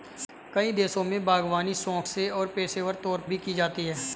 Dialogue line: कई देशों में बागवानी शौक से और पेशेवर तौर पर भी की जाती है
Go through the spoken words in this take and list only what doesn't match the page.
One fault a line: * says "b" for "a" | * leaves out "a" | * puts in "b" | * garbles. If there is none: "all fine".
* leaves out "पर"